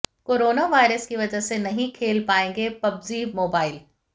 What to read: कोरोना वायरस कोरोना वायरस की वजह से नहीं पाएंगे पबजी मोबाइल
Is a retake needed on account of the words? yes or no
yes